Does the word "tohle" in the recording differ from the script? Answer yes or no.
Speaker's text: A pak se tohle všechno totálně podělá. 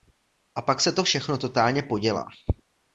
yes